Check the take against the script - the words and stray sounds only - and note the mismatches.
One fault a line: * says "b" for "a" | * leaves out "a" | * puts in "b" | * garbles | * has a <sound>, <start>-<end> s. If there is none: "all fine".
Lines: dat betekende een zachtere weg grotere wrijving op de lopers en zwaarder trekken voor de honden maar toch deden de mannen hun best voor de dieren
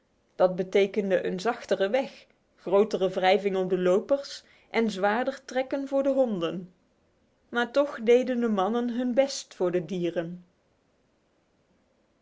all fine